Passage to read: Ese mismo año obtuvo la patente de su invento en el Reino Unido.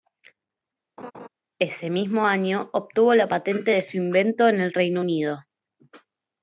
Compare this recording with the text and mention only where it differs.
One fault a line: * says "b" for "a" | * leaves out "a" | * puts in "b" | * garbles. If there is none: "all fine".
all fine